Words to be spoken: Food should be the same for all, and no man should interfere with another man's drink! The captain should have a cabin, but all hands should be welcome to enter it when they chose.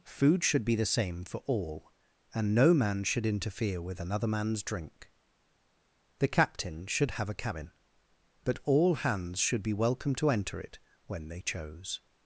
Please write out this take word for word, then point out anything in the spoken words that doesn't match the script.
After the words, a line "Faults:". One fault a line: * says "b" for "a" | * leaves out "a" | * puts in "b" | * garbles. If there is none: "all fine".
Food should be the same for all, and no man should interfere with another man's drink! The captain should have a cabin, but all hands should be welcome to enter it when they chose.
Faults:
all fine